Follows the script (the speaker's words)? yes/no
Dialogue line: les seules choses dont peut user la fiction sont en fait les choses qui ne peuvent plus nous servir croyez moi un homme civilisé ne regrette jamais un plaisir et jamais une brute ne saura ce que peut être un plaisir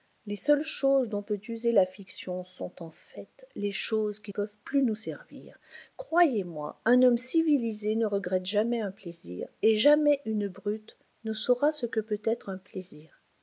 no